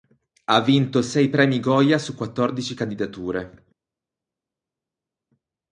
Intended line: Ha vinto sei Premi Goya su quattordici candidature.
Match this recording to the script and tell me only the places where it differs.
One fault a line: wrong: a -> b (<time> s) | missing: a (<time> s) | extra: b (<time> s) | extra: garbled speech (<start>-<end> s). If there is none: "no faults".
no faults